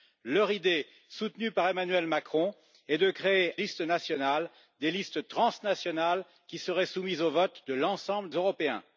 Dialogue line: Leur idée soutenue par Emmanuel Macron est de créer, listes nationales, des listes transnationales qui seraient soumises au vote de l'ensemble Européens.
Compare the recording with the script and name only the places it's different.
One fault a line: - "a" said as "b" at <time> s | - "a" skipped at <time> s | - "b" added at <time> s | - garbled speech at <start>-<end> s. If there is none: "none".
none